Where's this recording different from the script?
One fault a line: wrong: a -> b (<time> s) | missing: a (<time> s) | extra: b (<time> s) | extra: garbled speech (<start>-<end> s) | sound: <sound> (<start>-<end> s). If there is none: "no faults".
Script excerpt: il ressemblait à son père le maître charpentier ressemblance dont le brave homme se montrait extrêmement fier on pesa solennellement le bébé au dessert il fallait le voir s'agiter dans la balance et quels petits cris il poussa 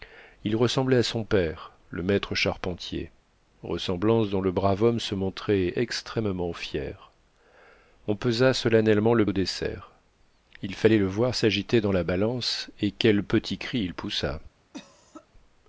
missing: bébé (9.3 s)
sound: cough (14.7-15.3 s)